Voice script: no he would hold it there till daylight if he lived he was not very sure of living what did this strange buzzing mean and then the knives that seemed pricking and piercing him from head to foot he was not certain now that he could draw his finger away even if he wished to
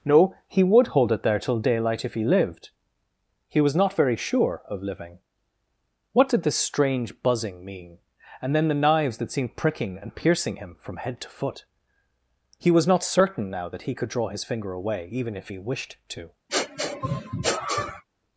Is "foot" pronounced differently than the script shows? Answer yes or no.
no